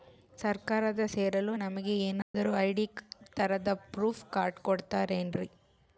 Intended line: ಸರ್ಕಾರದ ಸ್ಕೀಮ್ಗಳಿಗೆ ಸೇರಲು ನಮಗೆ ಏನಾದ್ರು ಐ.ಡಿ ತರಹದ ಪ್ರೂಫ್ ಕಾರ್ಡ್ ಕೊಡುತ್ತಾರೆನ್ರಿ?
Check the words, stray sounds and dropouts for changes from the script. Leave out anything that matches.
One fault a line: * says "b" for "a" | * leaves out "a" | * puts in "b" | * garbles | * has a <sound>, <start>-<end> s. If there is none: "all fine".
* leaves out "ಸ್ಕೀಮ್ಗಳಿಗೆ"
* has a dropout, 2.2-2.3 s